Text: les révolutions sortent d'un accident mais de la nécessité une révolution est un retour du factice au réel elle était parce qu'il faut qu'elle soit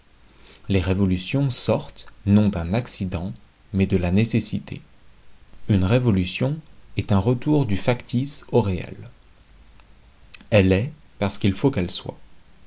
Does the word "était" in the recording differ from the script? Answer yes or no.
yes